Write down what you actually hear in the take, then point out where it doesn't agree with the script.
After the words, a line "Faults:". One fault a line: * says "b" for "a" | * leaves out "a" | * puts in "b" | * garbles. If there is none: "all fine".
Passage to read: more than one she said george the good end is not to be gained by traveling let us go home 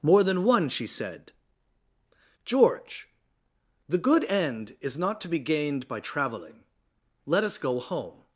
more than one she said george the good end is not to be gained by traveling let us go home
Faults:
all fine